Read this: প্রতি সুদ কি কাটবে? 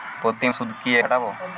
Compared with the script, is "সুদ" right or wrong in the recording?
right